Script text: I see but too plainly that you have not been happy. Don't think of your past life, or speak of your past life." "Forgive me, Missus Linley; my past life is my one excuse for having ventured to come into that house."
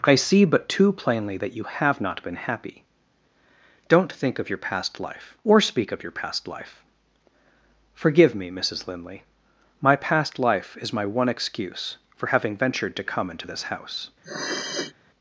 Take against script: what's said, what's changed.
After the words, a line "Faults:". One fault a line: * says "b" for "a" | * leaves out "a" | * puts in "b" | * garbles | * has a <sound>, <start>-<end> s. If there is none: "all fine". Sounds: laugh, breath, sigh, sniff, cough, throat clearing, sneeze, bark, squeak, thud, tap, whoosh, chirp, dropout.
I see but too plainly that you have not been happy. Don't think of your past life, or speak of your past life." "Forgive me, Missus Linley; my past life is my one excuse for having ventured to come into this house."
Faults:
* says "this" for "that"
* has a sniff, 14.2-14.9 s